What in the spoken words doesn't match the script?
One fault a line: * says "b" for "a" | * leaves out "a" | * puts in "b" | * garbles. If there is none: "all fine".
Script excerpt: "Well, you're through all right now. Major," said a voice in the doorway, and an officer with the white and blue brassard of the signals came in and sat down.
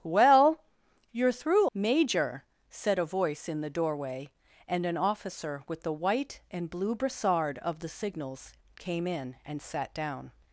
* leaves out "all right now"